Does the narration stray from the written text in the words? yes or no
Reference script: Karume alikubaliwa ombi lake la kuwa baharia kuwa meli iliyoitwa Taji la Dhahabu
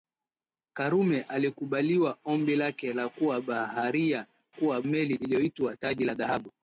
no